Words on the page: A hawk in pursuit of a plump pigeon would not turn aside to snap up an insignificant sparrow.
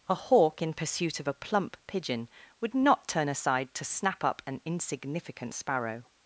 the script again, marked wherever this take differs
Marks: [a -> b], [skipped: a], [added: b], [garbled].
A hawk in pursuit of a plump pigeon would not turn aside to snap up an insignificant sparrow.